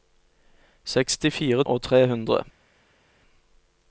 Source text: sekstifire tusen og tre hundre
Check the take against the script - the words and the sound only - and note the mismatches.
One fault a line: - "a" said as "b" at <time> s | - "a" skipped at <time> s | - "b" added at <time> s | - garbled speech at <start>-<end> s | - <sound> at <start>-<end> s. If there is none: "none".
- "tusen" skipped at 1.6 s